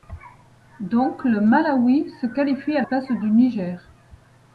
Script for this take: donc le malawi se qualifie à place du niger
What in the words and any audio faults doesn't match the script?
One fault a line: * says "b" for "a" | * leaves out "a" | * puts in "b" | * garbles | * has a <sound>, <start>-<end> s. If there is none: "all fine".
all fine